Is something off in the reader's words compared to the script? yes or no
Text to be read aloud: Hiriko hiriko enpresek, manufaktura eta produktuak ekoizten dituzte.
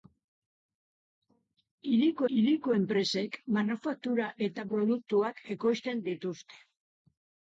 no